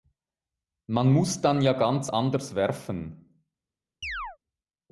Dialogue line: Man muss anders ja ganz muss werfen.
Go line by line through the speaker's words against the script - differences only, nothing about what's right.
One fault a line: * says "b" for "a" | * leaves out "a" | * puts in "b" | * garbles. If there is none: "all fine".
* says "dann" for "anders"
* says "anders" for "muss"